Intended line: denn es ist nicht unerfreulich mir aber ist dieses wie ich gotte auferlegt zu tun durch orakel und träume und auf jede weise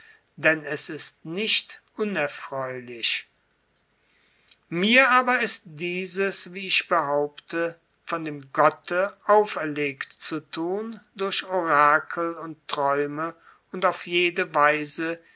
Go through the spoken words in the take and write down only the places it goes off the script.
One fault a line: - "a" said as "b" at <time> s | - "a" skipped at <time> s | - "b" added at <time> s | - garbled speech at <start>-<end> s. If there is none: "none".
- "behaupte von dem" added at 6.9 s